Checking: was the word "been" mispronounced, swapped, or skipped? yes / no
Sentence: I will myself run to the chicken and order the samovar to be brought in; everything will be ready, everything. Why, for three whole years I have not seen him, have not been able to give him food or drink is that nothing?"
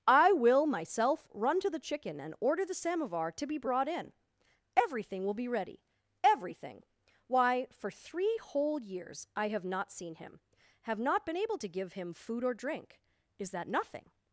no